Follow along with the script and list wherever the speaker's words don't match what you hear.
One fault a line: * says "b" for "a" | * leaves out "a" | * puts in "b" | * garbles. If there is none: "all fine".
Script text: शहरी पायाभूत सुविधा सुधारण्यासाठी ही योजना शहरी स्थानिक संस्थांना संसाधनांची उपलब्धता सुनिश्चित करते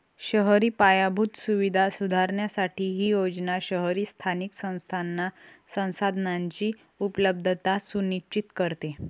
all fine